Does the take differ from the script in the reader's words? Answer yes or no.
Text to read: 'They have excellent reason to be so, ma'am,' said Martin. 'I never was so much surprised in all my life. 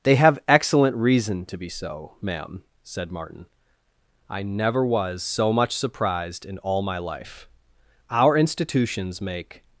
yes